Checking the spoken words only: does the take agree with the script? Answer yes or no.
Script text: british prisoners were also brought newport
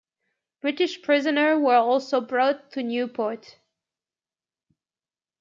no